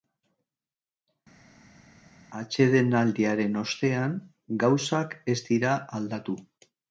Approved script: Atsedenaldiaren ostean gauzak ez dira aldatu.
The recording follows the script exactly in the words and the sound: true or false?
true